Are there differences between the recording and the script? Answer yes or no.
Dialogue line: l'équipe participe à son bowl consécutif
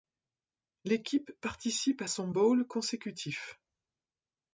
no